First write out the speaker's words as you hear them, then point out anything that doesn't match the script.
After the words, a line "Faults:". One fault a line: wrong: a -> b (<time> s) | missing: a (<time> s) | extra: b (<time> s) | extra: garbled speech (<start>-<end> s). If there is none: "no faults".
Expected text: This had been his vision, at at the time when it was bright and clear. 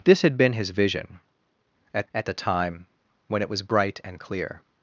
This had been his vision, at at the time when it was bright and clear.
Faults:
no faults